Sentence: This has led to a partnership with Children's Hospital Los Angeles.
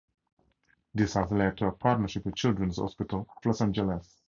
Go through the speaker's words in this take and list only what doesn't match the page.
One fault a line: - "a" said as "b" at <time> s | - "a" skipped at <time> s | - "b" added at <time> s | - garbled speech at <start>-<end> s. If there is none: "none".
none